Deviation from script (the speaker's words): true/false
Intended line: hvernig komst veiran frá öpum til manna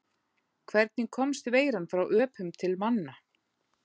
false